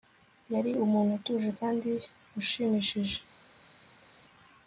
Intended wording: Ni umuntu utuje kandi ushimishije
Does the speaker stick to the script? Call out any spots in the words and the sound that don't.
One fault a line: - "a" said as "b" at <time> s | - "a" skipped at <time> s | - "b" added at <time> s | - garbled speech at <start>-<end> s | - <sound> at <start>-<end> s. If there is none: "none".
- "Ni" said as "Yari" at 0.5 s